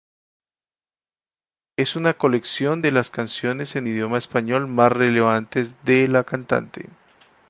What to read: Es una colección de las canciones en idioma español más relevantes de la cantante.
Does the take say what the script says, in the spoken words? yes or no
yes